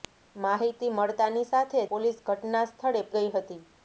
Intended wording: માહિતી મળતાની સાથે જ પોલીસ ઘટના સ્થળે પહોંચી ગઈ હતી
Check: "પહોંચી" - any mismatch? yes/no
yes